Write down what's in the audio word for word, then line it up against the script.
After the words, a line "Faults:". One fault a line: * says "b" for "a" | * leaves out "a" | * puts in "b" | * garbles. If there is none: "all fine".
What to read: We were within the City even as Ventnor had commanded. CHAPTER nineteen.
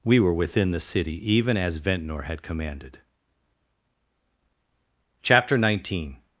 We were within the City even as Ventnor had commanded. CHAPTER nineteen.
Faults:
all fine